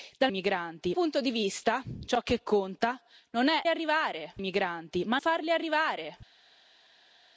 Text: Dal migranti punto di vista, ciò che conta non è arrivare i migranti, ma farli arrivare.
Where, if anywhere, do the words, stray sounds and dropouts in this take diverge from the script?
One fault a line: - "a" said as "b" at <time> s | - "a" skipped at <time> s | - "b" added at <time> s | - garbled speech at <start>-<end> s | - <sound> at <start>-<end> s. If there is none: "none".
none